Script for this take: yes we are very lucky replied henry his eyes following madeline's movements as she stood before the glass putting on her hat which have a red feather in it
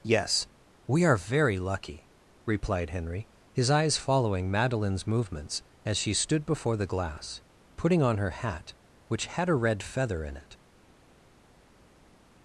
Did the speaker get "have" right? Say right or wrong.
wrong